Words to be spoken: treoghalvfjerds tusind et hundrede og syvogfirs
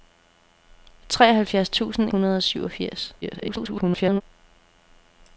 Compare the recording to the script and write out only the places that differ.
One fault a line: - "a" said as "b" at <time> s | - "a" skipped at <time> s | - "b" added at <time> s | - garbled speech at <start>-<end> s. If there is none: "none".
- "et" skipped at 2.1 s
- garbled speech at 3.2-4.2 s